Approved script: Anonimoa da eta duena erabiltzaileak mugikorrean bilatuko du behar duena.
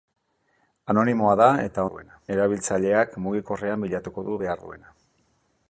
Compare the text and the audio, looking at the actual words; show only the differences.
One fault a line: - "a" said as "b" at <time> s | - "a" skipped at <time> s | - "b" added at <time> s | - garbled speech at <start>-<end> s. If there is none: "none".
none